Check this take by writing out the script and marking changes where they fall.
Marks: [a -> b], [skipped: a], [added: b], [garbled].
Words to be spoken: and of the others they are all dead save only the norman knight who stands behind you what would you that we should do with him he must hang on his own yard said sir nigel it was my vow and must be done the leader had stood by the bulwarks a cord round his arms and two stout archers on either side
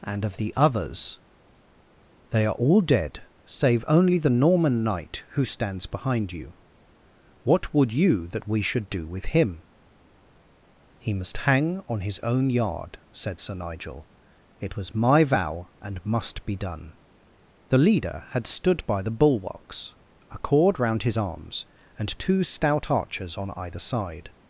and of the others they are all dead save only the norman knight who stands behind you what would you that we should do with him he must hang on his own yard said sir nigel it was my vow and must be done the leader had stood by the bulwarks a cord round his arms and two stout archers on either side